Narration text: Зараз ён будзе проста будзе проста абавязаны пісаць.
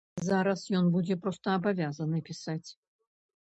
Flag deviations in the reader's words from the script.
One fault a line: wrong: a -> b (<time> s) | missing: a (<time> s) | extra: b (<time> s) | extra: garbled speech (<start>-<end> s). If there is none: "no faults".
missing: будзе проста (1.6 s)